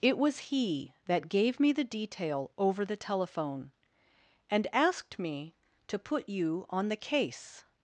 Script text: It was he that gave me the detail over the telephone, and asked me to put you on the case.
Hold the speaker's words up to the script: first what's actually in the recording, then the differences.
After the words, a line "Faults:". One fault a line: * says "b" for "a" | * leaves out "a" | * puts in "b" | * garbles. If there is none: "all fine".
It was he that gave me the detail over the telephone, and asked me to put you on the case.
Faults:
all fine